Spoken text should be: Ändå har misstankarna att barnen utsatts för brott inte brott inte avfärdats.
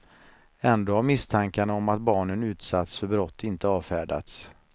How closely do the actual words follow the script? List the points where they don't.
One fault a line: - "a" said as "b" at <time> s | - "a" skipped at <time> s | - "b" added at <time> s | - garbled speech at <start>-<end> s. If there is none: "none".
- "om" added at 1.7 s
- "brott inte" skipped at 3.7 s